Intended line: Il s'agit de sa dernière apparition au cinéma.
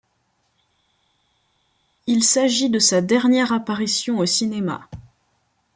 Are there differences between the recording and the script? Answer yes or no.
no